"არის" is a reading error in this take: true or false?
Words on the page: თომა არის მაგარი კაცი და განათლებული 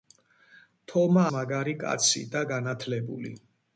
true